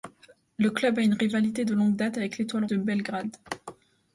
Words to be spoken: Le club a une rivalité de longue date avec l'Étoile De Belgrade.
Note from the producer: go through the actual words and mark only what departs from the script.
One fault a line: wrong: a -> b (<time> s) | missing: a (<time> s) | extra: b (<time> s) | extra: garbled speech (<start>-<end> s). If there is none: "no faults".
no faults